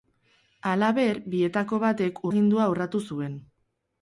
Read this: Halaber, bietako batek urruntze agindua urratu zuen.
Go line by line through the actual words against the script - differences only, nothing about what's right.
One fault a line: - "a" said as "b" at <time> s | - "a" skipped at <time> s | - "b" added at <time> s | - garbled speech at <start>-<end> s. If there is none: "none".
- "urruntze" skipped at 2.2 s